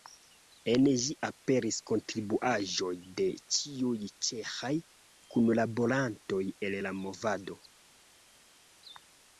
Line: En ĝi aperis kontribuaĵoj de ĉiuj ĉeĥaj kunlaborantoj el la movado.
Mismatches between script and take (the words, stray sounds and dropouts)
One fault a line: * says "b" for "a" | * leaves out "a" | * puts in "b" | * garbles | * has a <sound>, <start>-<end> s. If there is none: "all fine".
all fine